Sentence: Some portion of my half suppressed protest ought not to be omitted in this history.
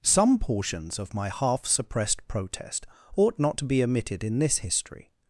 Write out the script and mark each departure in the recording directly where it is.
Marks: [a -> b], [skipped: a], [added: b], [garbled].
Some [portion -> portions] of my half suppressed protest ought not to be omitted in this history.